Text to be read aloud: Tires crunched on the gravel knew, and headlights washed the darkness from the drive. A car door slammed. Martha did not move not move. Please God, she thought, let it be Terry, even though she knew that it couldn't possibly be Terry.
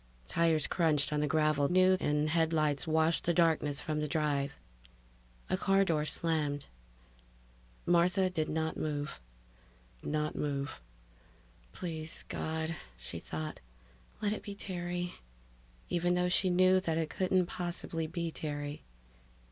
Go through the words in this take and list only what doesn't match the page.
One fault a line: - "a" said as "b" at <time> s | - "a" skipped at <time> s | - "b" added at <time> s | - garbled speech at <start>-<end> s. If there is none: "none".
none